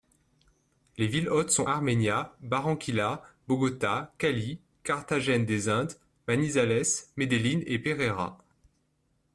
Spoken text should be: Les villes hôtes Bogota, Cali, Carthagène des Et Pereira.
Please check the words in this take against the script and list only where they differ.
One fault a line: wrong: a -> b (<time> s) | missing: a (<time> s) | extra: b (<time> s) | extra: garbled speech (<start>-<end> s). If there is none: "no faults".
extra: sont Armenia Barranquilla (1.5 s)
extra: Indes Manizales Medellín (5.7 s)